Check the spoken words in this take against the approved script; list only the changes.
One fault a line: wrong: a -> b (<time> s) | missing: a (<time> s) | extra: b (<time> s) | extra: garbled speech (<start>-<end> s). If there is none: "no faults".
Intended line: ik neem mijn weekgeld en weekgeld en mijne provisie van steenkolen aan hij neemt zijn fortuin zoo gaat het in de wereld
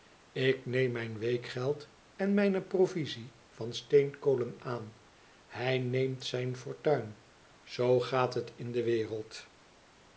missing: weekgeld en (2.3 s)